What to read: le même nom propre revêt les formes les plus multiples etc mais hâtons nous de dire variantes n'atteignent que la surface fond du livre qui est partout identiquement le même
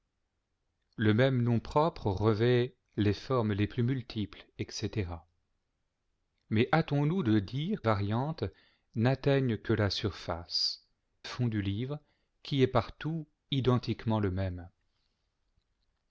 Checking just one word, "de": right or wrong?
right